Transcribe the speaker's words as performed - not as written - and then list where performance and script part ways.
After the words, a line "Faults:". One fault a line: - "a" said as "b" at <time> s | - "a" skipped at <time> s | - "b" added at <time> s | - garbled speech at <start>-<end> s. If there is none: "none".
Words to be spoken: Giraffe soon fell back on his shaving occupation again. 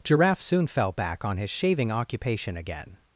Giraffe soon fell back on his shaving occupation again.
Faults:
none